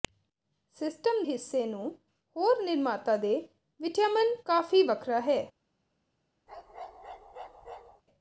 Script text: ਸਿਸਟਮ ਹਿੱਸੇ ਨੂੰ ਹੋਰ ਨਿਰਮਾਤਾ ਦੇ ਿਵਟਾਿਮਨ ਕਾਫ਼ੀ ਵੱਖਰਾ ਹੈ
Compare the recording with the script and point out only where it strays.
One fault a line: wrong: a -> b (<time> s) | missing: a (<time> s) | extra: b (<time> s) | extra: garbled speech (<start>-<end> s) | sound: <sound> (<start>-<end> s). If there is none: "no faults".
sound: bark (6.5-8.0 s)